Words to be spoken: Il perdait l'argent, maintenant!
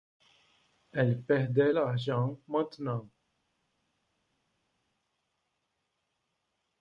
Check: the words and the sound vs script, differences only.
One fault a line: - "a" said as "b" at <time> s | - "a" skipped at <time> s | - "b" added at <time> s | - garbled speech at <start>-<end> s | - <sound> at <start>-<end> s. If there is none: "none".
- "Il" said as "Elle" at 0.9 s